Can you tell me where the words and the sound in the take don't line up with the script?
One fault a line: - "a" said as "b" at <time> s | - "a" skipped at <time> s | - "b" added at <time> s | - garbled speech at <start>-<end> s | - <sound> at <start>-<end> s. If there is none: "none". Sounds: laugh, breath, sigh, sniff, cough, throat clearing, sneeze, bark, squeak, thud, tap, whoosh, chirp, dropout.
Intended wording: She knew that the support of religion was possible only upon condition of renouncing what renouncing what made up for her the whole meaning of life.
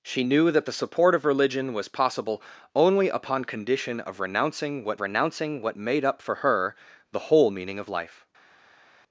none